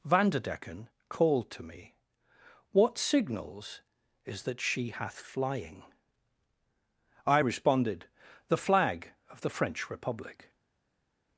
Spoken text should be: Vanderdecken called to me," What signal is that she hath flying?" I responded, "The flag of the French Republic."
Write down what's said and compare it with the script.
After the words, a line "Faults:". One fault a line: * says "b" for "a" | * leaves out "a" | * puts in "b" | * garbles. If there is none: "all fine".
Vanderdecken called to me," What signals is that she hath flying?" I responded, "The flag of the French Republic."
Faults:
* says "signals" for "signal"